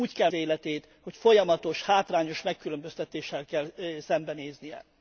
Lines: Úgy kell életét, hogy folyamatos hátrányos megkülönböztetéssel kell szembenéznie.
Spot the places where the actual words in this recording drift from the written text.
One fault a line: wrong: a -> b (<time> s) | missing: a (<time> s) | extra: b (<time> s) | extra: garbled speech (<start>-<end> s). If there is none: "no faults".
no faults